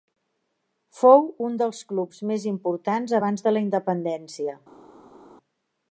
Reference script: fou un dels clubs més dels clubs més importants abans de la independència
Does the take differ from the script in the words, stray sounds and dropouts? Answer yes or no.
yes